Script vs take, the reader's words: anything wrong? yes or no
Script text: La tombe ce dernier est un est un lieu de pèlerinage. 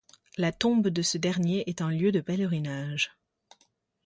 yes